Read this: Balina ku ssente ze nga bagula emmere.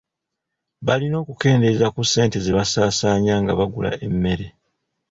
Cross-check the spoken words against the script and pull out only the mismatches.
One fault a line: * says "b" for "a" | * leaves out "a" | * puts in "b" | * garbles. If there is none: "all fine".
* puts in "okukendeeza"
* puts in "basaasaanya"